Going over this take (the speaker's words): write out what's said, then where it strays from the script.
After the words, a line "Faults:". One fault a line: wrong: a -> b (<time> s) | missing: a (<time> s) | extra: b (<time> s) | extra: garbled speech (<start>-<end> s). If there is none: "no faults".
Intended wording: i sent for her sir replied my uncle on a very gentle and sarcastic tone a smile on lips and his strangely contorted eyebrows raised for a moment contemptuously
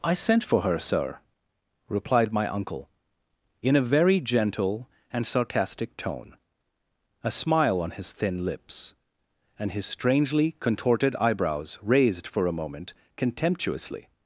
i sent for her sir replied my uncle in a very gentle and sarcastic tone a smile on his thin lips and his strangely contorted eyebrows raised for a moment contemptuously
Faults:
wrong: on -> in (3.6 s)
extra: his thin (7.9 s)